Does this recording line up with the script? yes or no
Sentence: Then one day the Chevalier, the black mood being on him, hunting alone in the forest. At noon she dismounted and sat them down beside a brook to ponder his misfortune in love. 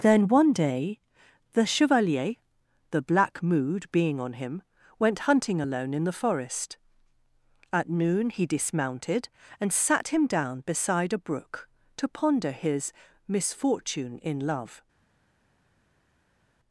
no